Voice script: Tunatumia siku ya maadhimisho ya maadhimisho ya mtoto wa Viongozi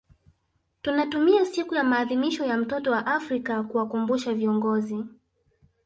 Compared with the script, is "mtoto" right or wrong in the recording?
wrong